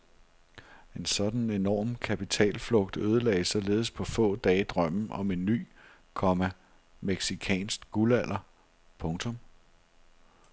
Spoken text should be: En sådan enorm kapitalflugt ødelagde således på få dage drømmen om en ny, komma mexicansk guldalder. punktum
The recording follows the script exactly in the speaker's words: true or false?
true